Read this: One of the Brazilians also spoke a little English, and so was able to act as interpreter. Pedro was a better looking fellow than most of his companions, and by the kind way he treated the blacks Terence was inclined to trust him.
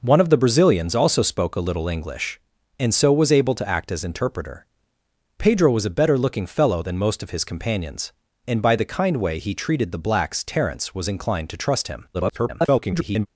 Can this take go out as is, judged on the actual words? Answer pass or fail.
fail